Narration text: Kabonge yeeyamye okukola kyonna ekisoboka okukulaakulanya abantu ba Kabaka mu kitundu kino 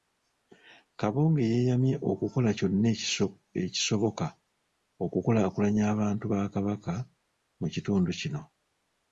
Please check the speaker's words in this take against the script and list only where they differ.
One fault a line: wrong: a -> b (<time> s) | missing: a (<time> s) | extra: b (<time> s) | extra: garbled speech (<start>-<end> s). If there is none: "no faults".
no faults